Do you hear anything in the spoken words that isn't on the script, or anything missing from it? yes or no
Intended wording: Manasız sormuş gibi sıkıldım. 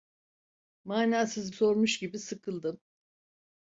no